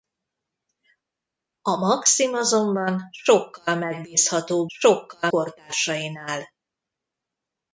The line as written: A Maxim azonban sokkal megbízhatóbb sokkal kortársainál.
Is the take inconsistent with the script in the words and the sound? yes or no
no